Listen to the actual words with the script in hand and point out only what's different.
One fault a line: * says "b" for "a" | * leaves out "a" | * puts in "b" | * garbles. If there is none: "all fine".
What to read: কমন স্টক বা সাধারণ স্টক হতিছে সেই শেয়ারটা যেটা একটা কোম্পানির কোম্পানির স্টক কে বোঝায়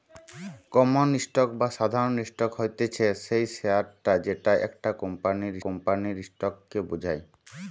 all fine